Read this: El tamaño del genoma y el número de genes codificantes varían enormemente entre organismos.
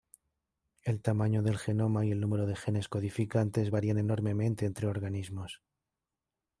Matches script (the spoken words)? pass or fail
pass